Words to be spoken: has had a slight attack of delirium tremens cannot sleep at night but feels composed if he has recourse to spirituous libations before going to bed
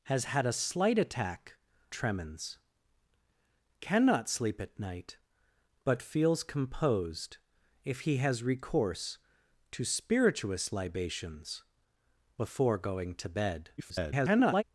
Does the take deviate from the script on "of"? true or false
true